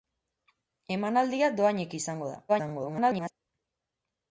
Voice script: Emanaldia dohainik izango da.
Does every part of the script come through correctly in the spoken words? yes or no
no